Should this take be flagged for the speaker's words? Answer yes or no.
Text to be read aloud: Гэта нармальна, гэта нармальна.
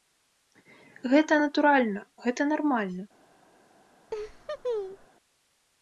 yes